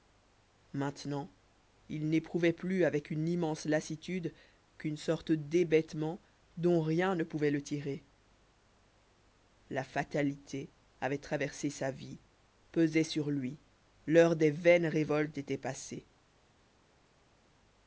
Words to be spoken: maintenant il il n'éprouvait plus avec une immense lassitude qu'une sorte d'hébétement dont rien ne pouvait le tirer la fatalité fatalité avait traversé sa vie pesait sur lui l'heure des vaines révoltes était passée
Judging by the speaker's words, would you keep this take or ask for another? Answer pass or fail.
fail